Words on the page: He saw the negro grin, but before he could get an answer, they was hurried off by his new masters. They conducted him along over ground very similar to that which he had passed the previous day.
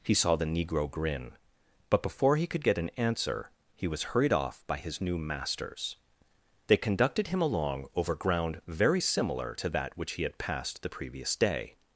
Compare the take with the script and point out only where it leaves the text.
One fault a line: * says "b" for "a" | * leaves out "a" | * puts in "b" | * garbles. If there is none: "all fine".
* says "he" for "they"